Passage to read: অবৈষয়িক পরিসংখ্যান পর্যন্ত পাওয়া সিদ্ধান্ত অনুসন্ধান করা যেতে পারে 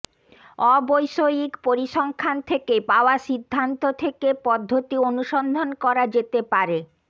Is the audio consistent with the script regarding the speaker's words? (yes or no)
no